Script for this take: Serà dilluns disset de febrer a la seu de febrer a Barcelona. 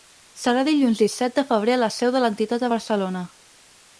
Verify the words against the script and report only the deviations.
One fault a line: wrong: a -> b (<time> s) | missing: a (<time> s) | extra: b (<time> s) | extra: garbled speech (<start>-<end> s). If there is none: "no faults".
wrong: febrer -> l'entitat (2.3 s)